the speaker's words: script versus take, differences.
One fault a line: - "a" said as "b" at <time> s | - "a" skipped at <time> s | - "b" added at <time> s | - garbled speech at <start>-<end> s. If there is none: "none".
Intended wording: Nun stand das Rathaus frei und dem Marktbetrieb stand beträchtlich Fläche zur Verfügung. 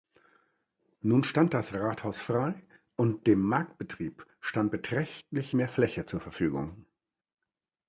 - "mehr" added at 5.5 s